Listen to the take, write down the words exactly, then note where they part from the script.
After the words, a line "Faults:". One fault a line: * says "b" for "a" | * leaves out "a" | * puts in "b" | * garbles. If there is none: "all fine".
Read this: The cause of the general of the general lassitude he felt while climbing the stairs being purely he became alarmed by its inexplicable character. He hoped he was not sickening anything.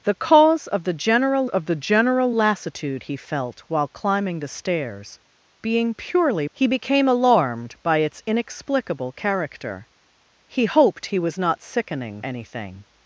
The cause of the general of the general lassitude he felt while climbing the stairs being purely he became alarmed by its inexplicable character. He hoped he was not sickening anything.
Faults:
all fine